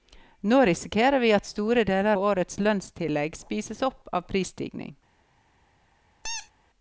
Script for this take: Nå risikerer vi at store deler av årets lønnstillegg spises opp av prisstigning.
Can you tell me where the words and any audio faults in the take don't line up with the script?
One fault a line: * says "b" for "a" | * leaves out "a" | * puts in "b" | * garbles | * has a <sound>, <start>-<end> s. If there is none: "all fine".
* leaves out "av"
* has a squeak, 6.2-6.5 s